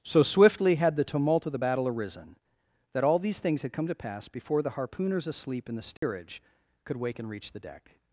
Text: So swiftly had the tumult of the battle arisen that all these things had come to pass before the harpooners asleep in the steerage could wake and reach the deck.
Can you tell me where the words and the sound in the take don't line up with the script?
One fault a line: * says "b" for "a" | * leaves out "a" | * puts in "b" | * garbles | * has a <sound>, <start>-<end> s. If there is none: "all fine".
* has a dropout, 6.0-6.0 s